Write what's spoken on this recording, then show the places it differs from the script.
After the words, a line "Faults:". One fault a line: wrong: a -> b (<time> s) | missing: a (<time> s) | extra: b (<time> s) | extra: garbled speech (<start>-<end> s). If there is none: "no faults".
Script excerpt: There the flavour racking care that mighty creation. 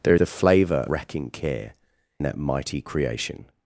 There the flavour racking care that mighty creation.
Faults:
no faults